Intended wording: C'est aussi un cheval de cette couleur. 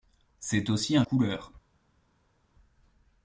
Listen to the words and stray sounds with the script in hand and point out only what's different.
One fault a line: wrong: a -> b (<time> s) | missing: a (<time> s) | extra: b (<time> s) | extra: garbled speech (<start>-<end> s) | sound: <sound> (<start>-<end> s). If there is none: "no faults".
missing: cheval de cette (1.0 s)